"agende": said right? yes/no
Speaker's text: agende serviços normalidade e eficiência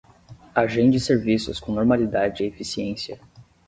yes